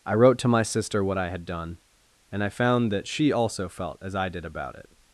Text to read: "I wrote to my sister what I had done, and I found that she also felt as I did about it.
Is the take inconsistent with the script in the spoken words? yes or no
no